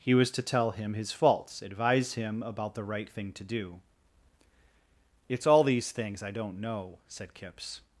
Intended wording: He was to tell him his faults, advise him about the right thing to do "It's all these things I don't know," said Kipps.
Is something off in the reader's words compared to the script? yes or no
no